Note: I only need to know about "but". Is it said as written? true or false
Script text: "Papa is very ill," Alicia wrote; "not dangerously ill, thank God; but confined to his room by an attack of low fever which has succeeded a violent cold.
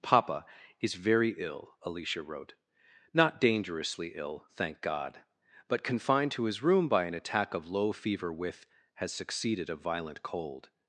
true